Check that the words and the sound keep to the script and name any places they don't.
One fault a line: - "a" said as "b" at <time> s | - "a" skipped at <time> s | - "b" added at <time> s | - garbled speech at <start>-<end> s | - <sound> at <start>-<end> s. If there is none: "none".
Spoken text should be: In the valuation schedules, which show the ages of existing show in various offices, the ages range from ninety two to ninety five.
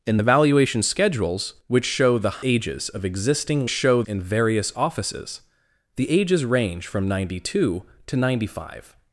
none